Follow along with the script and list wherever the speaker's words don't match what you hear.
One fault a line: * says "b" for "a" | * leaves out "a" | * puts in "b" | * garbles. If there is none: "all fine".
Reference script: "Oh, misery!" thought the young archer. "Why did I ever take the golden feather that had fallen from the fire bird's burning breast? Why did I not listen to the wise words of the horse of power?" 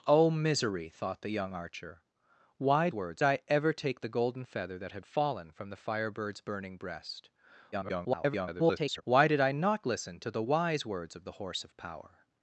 * says "words" for "did"
* garbles